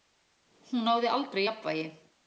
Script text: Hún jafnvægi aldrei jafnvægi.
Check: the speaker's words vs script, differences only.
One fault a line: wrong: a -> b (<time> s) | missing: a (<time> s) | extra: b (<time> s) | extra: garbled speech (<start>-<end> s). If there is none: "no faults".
wrong: jafnvægi -> náði (0.9 s)